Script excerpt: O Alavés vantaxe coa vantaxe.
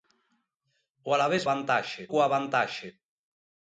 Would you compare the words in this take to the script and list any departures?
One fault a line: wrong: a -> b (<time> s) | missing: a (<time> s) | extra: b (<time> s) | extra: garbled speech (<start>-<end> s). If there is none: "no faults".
no faults